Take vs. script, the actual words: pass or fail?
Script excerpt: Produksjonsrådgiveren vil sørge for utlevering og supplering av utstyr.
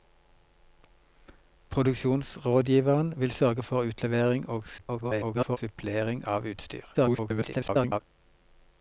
fail